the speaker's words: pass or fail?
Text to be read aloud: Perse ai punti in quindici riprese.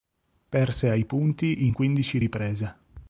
pass